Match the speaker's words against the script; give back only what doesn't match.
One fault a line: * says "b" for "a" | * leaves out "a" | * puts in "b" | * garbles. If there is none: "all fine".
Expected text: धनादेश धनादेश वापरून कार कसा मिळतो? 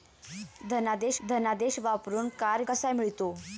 all fine